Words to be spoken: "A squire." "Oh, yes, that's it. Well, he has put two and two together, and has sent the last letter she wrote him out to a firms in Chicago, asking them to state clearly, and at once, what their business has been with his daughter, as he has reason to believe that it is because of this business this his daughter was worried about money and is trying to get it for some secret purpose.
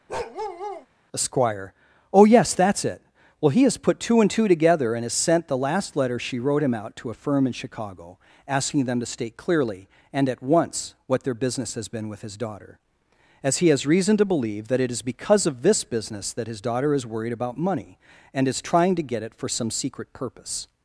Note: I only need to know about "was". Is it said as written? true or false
false